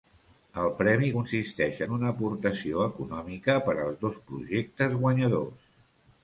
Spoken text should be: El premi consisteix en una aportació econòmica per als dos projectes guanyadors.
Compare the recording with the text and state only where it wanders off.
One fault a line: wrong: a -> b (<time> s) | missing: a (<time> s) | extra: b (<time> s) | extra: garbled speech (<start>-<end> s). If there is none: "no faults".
no faults